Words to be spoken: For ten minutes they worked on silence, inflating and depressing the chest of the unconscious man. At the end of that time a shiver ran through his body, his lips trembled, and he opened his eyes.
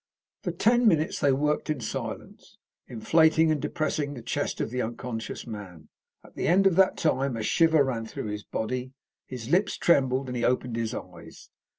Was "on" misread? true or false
true